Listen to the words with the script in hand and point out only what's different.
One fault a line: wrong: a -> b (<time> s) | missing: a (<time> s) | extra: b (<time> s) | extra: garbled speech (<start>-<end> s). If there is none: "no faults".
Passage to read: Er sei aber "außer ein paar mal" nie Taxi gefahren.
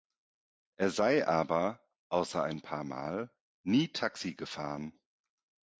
no faults